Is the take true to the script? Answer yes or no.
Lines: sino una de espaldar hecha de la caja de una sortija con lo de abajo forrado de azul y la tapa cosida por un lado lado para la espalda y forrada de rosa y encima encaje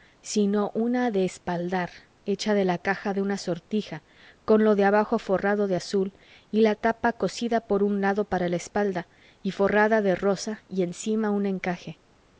no